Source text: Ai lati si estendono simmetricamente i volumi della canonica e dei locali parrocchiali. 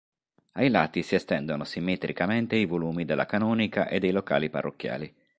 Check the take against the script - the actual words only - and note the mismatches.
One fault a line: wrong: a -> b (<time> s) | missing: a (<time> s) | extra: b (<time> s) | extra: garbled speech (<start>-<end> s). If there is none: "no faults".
no faults